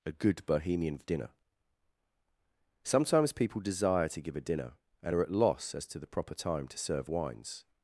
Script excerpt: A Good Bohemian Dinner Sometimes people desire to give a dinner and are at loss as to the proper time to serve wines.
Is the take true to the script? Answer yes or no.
yes